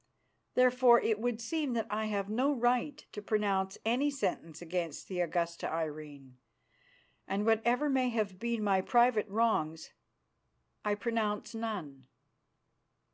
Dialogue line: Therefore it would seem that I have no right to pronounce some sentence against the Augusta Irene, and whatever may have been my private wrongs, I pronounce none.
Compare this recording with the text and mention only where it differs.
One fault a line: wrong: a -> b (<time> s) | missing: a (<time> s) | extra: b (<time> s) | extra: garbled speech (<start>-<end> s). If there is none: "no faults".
wrong: some -> any (3.9 s)